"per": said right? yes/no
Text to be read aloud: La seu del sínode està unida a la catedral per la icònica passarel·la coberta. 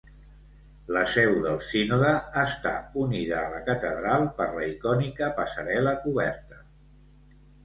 yes